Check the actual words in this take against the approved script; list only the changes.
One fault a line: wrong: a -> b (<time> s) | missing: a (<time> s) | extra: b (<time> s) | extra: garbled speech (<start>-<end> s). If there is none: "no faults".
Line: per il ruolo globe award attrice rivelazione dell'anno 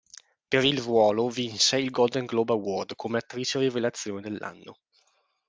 extra: vinse il golden (1.3 s)
extra: come (3.0 s)